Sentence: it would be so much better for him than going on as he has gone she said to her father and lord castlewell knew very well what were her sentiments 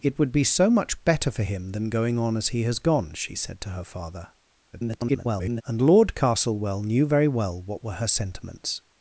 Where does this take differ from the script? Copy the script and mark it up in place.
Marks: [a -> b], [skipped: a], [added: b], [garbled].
it would be so much better for him than going on as he has gone she said to her father [garbled] and lord castlewell knew very well what were her sentiments